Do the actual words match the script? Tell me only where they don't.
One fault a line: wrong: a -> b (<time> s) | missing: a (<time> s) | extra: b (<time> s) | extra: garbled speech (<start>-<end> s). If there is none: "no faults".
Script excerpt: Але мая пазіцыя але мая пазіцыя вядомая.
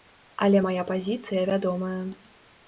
missing: але мая пазіцыя (1.4 s)